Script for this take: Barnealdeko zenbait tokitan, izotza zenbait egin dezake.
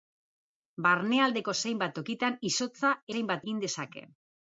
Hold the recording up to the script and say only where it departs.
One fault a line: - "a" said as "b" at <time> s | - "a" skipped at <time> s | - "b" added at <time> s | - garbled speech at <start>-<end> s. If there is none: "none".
none